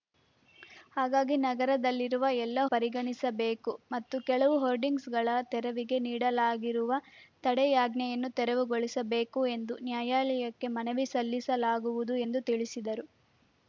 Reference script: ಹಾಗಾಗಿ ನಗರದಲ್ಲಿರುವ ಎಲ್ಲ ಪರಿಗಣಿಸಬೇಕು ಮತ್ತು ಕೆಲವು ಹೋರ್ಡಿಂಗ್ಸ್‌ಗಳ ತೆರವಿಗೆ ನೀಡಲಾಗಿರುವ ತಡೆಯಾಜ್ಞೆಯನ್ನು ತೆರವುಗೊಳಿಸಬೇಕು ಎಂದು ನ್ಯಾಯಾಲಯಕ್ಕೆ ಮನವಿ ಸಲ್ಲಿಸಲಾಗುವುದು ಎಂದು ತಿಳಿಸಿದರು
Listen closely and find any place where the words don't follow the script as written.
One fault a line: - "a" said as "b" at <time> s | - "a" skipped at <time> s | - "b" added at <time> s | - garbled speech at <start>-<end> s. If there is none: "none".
none